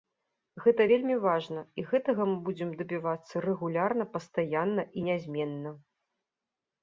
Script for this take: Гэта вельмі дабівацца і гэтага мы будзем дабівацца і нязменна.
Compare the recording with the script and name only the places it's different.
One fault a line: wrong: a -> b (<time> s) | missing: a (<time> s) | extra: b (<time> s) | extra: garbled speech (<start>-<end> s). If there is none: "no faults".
wrong: дабівацца -> важна (1.2 s)
extra: рэгулярна пастаянна (3.5 s)